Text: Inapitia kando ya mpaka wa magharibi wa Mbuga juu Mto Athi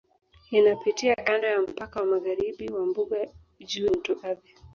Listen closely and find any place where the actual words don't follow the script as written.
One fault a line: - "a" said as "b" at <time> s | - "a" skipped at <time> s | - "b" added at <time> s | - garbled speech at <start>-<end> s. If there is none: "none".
none